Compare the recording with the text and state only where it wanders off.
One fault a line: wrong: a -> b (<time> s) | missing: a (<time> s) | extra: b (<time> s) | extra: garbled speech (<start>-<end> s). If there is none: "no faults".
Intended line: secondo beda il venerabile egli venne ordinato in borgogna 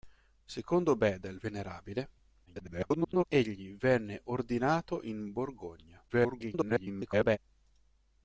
extra: garbled speech (2.5-3.2 s)
extra: garbled speech (6.1-7.4 s)